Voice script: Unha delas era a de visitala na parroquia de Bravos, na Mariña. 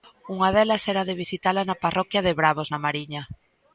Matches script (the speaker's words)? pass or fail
pass